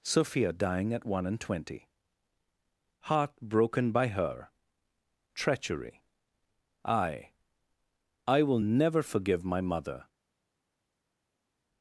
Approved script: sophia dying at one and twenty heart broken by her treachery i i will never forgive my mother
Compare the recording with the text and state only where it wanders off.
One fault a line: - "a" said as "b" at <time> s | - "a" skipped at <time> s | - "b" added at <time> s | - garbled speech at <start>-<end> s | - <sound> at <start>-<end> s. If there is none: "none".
none